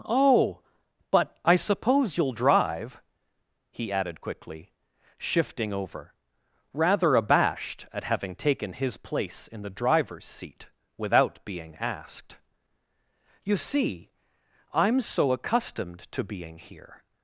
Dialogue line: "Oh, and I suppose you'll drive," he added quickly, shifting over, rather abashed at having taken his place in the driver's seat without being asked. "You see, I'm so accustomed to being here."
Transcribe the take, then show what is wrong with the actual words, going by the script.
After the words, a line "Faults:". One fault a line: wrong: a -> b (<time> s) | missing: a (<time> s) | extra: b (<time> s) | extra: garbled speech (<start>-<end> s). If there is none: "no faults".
"Oh, but I suppose you'll drive," he added quickly, shifting over, rather abashed at having taken his place in the driver's seat without being asked. "You see, I'm so accustomed to being here."
Faults:
wrong: and -> but (1.1 s)